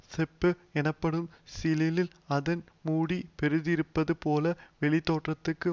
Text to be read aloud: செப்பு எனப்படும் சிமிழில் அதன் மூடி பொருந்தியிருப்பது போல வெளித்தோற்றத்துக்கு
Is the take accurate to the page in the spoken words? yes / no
yes